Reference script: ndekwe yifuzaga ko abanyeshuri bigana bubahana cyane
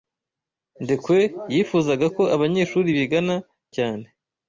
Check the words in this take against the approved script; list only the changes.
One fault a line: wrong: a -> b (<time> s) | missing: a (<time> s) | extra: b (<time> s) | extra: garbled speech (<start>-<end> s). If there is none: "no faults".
missing: bubahana (3.3 s)